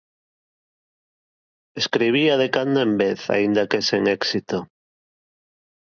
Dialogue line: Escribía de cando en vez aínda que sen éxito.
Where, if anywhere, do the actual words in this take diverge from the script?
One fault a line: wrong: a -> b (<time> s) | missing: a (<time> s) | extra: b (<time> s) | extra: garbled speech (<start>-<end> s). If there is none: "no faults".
no faults